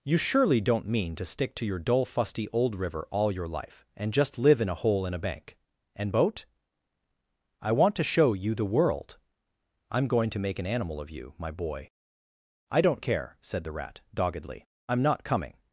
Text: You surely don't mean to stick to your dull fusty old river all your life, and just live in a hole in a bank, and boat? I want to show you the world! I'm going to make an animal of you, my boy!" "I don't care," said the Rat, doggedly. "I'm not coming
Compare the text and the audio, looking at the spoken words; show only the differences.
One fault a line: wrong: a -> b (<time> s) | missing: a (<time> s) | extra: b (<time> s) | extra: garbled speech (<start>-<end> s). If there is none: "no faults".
no faults